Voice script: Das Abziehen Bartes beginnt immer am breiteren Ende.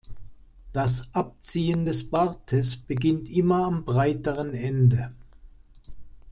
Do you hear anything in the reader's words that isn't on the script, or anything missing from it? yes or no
yes